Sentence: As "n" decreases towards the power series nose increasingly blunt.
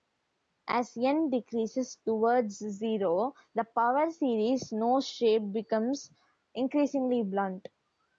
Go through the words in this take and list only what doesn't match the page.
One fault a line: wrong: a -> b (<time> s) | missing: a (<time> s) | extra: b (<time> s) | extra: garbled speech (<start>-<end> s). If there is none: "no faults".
extra: zero (2.5 s)
extra: shape becomes (5.1 s)